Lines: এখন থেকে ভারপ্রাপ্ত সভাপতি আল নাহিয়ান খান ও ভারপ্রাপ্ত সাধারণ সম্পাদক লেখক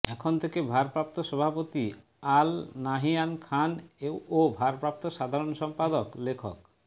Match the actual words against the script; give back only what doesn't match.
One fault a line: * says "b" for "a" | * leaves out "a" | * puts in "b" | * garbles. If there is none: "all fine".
all fine